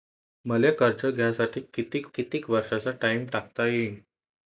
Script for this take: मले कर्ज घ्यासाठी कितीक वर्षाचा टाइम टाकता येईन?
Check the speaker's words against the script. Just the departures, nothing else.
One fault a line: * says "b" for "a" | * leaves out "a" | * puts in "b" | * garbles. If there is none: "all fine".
* puts in "कितीक"